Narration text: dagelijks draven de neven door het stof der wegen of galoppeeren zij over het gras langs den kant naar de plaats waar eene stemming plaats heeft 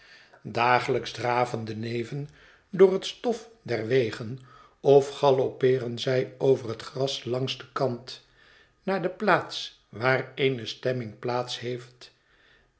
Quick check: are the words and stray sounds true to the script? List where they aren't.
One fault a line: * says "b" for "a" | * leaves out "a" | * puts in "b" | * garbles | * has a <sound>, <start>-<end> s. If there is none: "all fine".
all fine